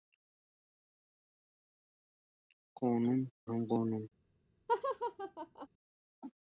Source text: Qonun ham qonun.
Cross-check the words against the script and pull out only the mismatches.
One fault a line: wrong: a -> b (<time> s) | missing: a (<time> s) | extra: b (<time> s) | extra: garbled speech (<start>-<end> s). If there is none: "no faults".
no faults